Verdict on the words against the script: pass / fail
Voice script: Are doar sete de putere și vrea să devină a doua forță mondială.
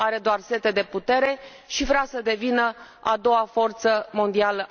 pass